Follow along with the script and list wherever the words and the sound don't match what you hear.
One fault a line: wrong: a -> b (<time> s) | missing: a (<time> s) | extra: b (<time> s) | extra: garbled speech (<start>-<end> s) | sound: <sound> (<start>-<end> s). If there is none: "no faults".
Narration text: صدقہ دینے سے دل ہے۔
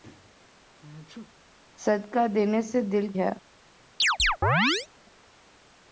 sound: sneeze (0.8-1.3 s)
sound: chirp (4.0-4.9 s)